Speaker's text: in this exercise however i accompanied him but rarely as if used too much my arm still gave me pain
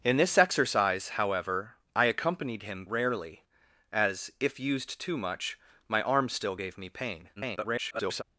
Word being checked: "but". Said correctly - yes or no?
no